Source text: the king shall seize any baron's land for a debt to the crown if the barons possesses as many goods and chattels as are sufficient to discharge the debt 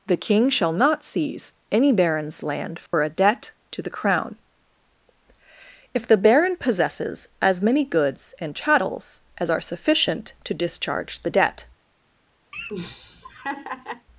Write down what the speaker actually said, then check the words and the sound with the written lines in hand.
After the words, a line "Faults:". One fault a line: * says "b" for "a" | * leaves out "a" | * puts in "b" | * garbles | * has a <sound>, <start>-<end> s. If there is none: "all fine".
the king shall not seize any baron's land for a debt to the crown if the baron possesses as many goods and chattels as are sufficient to discharge the debt
Faults:
* puts in "not"
* has a dropout, 2.9-2.9 s
* says "baron" for "barons"
* has a laugh, 12.5-14.1 s